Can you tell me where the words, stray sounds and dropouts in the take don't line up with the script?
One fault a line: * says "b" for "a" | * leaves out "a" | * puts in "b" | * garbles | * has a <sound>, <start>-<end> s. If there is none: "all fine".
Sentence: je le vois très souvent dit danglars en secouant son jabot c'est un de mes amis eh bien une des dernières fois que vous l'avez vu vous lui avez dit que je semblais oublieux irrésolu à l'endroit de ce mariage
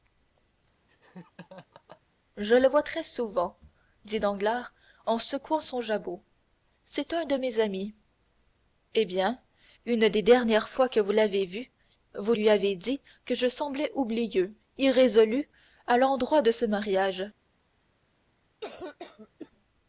* has a laugh, 0.9-2.0 s
* has a cough, 18.6-19.5 s